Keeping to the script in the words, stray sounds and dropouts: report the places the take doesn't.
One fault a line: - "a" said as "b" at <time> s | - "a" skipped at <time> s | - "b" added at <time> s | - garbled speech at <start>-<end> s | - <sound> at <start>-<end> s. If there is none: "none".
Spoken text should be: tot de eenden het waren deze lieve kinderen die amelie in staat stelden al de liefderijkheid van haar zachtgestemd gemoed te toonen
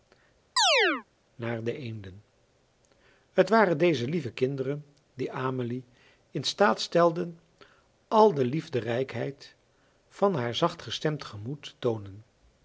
- chirp at 0.6-1.0 s
- "tot" said as "naar" at 1.4 s